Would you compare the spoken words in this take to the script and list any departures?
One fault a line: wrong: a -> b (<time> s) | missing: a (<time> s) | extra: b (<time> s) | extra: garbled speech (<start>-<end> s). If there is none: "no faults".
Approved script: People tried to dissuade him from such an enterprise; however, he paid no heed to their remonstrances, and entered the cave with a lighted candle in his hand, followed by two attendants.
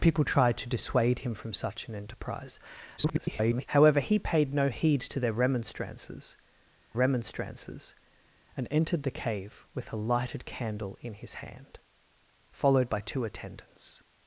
extra: garbled speech (3.0-3.7 s)
extra: remonstrances (6.9 s)